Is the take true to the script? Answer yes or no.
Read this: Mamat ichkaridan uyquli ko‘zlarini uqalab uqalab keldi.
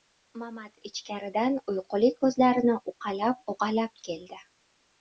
yes